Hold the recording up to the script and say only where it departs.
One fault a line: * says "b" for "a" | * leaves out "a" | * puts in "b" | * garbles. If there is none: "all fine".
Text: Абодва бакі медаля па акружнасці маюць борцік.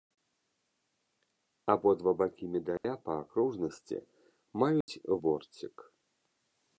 all fine